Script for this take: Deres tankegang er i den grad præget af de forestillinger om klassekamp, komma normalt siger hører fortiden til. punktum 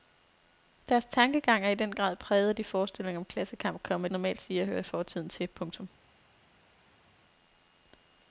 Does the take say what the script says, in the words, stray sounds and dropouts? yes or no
yes